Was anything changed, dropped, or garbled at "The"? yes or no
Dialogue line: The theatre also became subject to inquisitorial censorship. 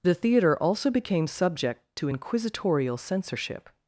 no